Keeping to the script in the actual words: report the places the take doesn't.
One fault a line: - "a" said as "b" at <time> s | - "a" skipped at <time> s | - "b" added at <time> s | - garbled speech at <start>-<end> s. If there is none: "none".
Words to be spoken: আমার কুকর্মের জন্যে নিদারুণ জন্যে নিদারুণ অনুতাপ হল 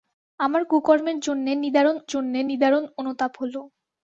none